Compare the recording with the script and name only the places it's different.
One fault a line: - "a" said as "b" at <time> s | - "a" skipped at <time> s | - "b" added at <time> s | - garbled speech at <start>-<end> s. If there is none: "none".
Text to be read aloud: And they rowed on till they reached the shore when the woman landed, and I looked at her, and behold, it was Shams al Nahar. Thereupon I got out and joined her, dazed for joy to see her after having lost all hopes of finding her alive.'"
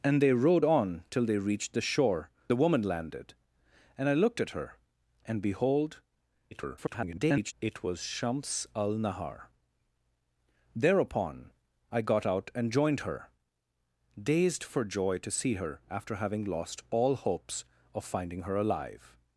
- "when" skipped at 2.3 s
- garbled speech at 6.5-7.5 s